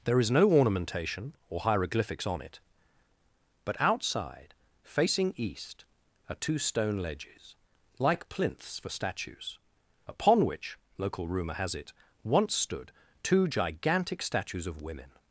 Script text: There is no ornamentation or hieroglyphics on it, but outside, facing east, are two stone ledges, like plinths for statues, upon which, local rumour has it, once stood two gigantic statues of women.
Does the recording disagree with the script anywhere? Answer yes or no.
no